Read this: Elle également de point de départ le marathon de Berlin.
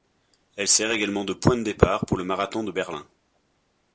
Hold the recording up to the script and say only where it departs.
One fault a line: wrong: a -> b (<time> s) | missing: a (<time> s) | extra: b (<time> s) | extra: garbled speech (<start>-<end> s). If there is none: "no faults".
extra: sert (0.7 s)
extra: pour (2.1 s)